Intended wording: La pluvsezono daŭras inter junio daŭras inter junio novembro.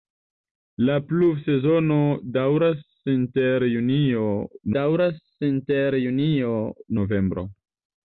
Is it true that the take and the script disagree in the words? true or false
false